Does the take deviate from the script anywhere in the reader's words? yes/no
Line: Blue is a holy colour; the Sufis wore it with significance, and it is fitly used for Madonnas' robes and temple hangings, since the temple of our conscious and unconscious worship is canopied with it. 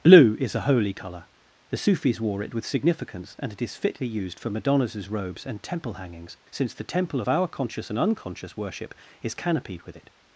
no